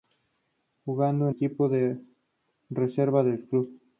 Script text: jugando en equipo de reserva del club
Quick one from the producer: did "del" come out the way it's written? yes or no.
yes